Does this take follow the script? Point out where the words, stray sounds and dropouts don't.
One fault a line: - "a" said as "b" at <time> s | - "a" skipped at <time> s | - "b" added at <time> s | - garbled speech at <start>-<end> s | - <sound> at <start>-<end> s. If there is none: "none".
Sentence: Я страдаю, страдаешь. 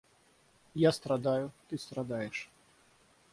- "ты" added at 1.7 s